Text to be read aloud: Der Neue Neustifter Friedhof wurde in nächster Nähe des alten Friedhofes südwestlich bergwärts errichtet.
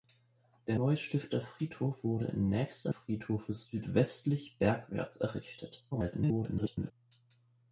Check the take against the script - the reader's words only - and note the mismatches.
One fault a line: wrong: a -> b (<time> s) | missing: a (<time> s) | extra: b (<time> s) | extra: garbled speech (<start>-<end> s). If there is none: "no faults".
missing: Neue (0.8 s)
missing: Nähe des alten (2.9 s)
extra: garbled speech (5.9-6.9 s)